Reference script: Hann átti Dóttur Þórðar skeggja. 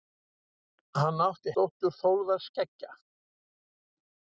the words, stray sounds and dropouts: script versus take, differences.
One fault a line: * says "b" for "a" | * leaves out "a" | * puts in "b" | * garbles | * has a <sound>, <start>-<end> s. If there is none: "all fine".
all fine